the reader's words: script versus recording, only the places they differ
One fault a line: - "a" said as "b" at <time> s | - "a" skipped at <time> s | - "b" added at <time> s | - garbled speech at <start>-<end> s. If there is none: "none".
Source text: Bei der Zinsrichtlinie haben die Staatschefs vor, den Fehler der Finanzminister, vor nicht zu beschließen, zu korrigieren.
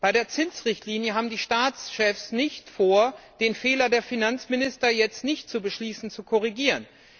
- "nicht" added at 2.3 s
- "vor" said as "jetzt" at 4.9 s